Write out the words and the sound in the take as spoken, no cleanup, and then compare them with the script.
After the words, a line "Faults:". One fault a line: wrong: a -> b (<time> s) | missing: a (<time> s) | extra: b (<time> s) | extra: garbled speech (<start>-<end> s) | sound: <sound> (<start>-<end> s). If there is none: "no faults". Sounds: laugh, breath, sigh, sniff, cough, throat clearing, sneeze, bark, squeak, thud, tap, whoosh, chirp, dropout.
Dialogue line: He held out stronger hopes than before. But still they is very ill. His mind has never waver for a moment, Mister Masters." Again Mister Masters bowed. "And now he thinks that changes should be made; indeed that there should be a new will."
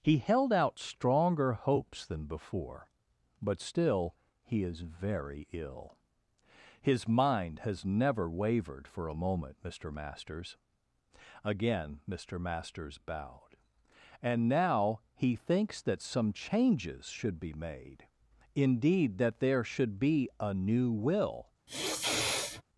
He held out stronger hopes than before. But still he is very ill. His mind has never wavered for a moment, Mister Masters." Again Mister Masters bowed. "And now he thinks that some changes should be made; indeed that there should be a new will."
Faults:
wrong: they -> he (4.4 s)
wrong: waver -> wavered (8.3 s)
extra: some (16.0 s)
sound: sniff (21.7-22.6 s)